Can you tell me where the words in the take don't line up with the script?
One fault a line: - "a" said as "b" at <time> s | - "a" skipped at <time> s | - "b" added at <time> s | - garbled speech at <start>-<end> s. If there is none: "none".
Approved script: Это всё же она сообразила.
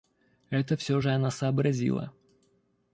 none